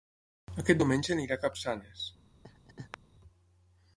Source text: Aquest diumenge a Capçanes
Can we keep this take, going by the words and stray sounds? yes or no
no